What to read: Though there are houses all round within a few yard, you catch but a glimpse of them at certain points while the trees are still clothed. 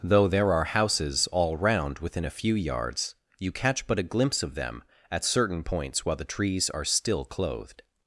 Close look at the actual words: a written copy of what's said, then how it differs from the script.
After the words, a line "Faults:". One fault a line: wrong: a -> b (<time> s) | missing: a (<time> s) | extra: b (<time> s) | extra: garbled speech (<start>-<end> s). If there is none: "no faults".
Though there are houses all round within a few yards, you catch but a glimpse of them at certain points while the trees are still clothed.
Faults:
wrong: yard -> yards (2.5 s)